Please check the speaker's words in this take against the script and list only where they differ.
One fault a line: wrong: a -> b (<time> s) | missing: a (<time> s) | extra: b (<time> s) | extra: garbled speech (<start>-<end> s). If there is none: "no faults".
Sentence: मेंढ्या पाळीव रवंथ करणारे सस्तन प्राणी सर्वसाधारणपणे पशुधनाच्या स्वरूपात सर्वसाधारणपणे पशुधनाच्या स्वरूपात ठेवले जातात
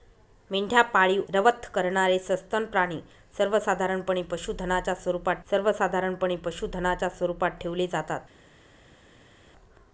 no faults